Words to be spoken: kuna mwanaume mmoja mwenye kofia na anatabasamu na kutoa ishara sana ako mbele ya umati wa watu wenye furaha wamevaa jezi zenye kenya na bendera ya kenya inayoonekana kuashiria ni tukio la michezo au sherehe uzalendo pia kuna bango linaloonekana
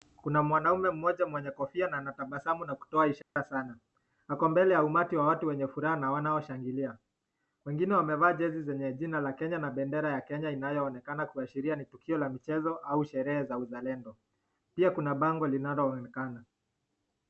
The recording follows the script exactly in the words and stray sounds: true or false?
false